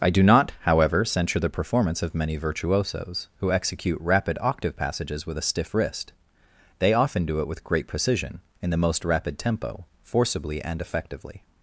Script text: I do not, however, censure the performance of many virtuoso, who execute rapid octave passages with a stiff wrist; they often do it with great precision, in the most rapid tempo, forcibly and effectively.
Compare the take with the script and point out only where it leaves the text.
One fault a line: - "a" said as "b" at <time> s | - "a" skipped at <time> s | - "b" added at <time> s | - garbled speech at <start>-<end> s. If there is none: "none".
- "virtuoso" said as "virtuosos" at 2.4 s